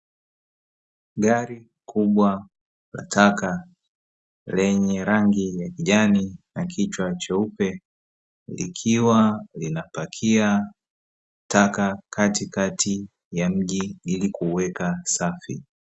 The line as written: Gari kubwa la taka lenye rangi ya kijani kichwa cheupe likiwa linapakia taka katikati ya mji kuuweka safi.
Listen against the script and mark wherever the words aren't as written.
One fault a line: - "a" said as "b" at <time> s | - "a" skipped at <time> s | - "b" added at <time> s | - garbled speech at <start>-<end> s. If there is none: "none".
- "na" added at 6.5 s
- "ili" added at 14.0 s